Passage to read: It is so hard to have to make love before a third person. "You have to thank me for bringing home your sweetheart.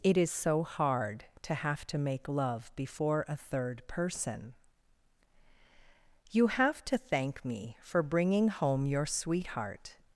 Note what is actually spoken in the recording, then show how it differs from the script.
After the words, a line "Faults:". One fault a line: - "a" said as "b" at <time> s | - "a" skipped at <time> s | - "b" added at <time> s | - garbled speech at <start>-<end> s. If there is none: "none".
It is so hard to have to make love before a third person. "You have to thank me for bringing home your sweetheart.
Faults:
none